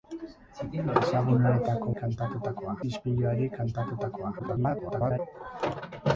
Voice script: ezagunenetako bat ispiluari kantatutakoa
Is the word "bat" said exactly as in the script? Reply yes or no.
no